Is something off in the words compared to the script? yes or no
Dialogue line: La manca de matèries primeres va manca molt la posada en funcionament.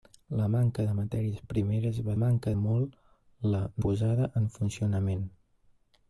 no